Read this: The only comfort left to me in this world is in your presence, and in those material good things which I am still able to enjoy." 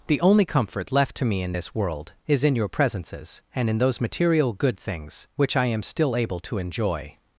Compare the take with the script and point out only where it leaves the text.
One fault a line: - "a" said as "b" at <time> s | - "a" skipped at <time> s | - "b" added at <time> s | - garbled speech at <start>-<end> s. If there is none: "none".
- "presence" said as "presences" at 2.7 s